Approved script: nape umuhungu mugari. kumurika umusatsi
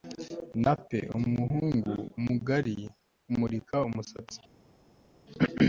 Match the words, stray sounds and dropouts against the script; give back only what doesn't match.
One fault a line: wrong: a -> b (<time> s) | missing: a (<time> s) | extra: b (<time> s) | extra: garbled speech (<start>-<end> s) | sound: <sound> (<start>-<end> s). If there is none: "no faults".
no faults